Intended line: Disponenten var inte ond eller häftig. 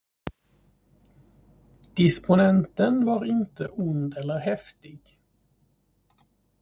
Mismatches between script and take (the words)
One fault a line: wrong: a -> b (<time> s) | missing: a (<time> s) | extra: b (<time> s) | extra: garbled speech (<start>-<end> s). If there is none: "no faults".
no faults